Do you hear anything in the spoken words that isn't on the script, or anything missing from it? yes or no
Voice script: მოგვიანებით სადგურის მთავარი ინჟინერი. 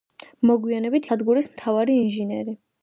no